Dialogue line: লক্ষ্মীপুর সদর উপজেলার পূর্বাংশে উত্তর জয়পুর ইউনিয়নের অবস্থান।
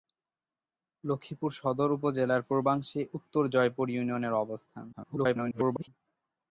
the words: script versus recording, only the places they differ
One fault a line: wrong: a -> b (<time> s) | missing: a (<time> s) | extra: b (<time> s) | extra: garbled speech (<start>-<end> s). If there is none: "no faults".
extra: garbled speech (4.9-5.9 s)